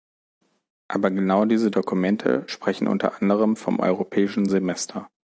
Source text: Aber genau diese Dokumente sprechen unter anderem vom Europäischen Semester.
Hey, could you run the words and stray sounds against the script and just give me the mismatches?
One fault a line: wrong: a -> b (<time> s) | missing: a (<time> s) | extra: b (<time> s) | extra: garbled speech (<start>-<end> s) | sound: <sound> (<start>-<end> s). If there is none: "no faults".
no faults